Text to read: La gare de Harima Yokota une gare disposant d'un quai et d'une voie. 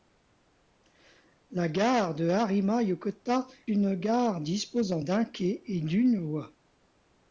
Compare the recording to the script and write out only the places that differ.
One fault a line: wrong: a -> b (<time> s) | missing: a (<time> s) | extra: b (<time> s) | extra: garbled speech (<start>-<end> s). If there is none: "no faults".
no faults